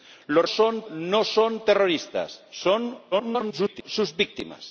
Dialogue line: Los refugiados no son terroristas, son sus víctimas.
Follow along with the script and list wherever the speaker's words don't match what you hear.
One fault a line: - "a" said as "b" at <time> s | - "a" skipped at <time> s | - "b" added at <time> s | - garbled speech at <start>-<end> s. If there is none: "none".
- "refugiados" said as "son" at 0.5 s
- garbled speech at 3.1-3.8 s